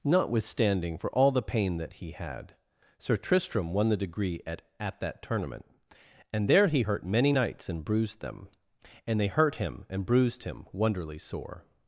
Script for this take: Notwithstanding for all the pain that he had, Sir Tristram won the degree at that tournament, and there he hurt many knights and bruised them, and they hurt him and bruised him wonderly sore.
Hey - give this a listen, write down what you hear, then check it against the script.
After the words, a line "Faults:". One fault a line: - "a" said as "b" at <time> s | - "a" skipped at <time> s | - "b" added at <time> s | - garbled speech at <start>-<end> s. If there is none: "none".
Notwithstanding for all the pain that he had, Sir Tristram won the degree at at that tournament, and there he hurt many knights and bruised them, and they hurt him and bruised him wonderly sore.
Faults:
- "at" added at 4.8 s